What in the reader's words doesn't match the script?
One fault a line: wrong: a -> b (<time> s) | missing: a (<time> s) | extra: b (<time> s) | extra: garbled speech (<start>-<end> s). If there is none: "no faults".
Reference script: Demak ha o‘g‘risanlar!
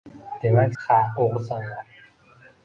no faults